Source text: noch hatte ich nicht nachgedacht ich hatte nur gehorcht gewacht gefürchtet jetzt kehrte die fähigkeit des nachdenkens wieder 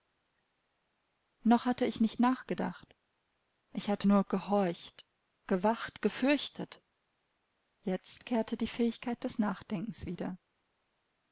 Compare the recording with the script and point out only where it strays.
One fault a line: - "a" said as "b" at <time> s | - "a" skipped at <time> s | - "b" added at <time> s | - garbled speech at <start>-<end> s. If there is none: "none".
none